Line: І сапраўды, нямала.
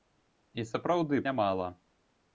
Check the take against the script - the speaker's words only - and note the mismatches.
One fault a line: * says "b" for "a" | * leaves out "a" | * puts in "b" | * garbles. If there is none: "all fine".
all fine